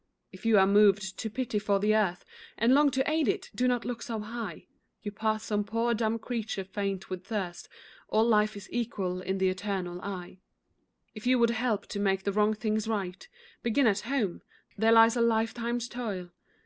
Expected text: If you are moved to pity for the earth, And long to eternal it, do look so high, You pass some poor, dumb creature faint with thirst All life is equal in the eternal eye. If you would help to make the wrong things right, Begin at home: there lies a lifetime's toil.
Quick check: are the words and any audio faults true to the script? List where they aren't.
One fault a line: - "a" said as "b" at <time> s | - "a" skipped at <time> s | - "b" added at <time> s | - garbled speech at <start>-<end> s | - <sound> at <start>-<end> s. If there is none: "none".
- "eternal" said as "aid" at 3.1 s
- "not" added at 3.7 s